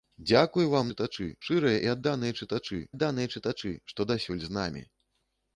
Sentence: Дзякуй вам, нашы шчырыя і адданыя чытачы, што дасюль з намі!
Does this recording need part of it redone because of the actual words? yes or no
yes